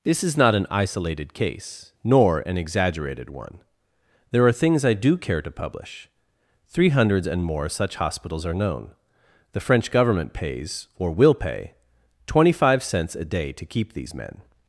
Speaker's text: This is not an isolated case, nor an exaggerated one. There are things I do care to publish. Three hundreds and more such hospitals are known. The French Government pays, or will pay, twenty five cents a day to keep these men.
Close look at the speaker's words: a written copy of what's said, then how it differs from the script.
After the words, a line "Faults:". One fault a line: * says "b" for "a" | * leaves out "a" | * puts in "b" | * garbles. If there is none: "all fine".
This is not an isolated case, nor an exaggerated one. There are things I do care to publish. Three hundreds and more such hospitals are known. The French Government pays, or will pay, twenty five cents a day to keep these men.
Faults:
all fine